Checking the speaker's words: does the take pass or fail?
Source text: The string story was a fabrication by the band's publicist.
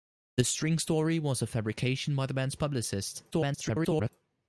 fail